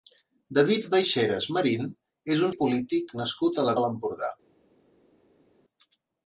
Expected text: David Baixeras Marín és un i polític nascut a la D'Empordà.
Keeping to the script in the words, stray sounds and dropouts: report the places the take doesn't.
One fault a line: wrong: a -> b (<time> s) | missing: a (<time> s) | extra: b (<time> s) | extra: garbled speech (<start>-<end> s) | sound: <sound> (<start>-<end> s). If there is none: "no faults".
no faults